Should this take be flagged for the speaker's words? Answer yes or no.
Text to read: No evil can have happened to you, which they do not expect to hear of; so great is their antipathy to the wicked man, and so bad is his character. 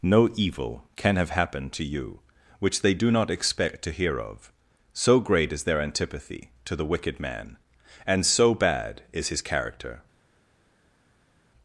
no